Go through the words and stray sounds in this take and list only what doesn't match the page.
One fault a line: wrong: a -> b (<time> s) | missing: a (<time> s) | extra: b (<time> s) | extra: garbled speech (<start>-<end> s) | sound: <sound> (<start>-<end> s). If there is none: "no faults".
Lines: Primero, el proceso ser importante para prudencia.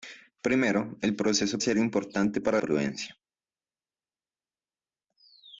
no faults